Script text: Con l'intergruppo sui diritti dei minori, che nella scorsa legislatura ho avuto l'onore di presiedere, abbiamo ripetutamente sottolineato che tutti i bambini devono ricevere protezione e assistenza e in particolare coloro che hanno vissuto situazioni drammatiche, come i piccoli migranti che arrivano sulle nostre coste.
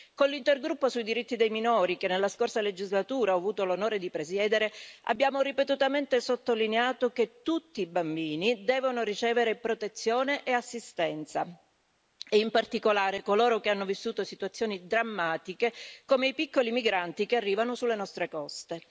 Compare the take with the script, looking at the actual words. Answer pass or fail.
pass